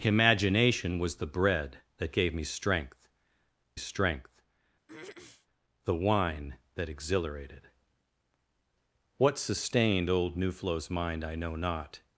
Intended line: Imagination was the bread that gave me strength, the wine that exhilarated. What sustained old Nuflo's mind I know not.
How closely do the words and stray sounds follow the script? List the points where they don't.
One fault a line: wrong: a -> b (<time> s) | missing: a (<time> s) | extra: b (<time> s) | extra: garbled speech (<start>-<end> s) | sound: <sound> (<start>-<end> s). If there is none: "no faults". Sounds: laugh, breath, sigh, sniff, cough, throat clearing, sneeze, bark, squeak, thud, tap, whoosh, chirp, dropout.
extra: strength (3.8 s)
sound: throat clearing (4.9-5.5 s)